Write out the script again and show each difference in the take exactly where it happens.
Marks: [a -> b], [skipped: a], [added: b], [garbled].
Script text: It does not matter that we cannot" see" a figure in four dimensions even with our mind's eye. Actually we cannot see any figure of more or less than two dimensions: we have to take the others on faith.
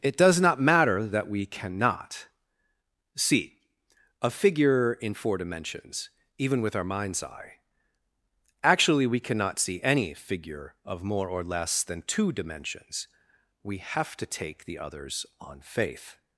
It does not matter that we cannot" see" a figure in four dimensions even with our mind's eye. Actually we cannot see any figure of more or less than two dimensions: we have to take the others on faith.